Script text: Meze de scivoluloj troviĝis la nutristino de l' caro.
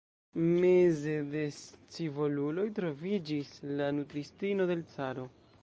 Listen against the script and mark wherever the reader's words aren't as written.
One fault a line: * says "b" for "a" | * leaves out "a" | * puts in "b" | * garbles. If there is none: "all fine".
all fine